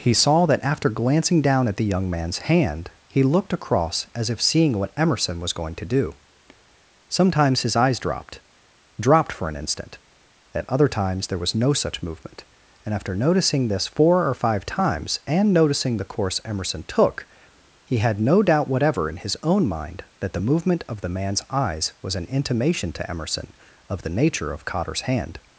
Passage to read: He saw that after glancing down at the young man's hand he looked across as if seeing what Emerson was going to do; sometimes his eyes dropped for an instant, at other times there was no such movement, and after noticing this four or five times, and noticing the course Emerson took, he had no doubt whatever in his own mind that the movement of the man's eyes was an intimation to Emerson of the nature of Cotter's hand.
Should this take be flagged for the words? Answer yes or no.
yes